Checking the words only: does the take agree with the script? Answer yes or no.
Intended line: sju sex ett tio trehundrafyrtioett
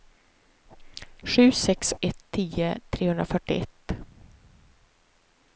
yes